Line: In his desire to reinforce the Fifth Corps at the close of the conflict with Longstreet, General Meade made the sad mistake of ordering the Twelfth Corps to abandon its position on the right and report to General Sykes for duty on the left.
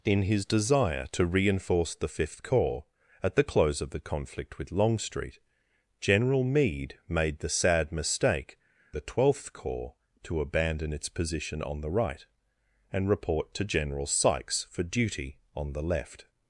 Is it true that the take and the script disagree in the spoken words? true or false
true